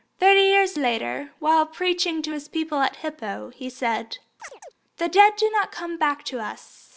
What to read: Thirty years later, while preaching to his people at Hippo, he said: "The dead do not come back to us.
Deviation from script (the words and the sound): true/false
true